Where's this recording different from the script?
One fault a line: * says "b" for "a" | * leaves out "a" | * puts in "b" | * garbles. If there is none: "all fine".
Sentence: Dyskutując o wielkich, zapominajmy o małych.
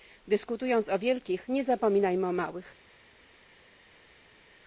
* puts in "nie"